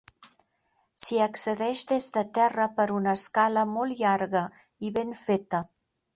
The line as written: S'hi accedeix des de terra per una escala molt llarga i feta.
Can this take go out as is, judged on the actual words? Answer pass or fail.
fail